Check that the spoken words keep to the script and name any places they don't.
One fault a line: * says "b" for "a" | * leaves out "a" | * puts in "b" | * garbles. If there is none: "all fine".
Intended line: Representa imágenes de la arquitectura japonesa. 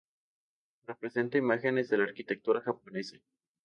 all fine